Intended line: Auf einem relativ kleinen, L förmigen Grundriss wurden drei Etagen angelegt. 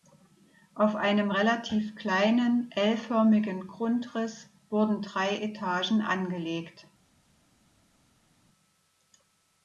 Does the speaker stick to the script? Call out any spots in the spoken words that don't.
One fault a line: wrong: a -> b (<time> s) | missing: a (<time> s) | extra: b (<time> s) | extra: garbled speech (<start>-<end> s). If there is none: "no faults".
no faults